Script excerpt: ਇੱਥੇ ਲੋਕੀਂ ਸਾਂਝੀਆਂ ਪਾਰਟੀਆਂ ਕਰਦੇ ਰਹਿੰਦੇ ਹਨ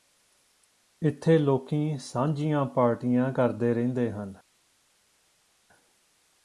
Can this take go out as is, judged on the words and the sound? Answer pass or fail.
pass